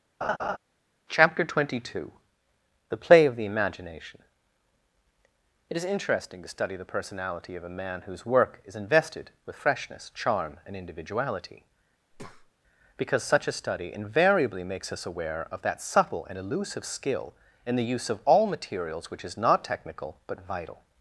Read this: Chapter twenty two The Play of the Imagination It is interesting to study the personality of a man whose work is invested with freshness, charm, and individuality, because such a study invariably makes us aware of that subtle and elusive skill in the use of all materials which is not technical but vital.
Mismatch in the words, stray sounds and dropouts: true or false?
true